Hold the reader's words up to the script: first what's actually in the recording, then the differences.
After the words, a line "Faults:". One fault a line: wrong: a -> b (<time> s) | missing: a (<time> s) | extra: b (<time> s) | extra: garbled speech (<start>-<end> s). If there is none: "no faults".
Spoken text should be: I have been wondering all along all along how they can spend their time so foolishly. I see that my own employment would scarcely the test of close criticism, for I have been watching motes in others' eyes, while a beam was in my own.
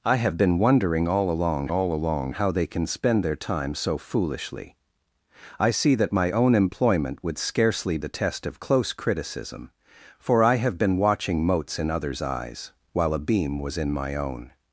I have been wondering all along all along how they can spend their time so foolishly. I see that my own employment would scarcely the test of close criticism, for I have been watching motes in others' eyes, while a beam was in my own.
Faults:
no faults